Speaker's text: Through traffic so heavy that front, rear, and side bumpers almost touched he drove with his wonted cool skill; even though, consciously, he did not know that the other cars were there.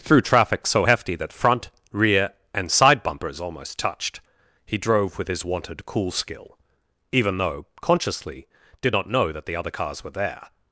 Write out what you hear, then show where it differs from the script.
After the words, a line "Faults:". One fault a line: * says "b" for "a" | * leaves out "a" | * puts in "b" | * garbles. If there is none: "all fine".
Through traffic so hefty that front, rear, and side bumpers almost touched he drove with his wonted cool skill; even though, consciously, did not know that the other cars were there.
Faults:
* says "hefty" for "heavy"
* leaves out "he"